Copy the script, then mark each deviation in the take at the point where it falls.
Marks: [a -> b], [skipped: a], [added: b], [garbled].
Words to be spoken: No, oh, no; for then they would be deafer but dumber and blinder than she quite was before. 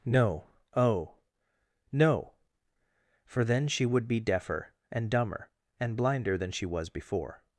No, oh, no; for then [they -> she] would be deafer [but -> and] dumber and blinder than she [skipped: quite] was before.